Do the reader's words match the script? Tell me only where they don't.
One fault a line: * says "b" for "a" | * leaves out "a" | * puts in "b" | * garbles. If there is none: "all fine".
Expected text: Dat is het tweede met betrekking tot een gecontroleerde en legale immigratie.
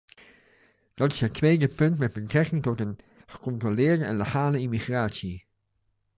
* puts in "punt"